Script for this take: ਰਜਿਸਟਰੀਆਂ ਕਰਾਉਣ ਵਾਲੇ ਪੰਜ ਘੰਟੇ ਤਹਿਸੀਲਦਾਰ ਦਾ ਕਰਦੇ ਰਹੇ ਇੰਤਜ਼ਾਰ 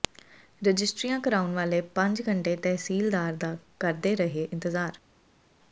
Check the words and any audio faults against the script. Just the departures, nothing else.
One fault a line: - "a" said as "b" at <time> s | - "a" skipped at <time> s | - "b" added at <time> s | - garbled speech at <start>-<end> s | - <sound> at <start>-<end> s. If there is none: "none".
none